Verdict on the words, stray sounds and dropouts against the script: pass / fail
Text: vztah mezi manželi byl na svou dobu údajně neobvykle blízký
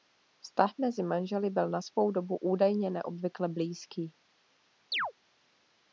fail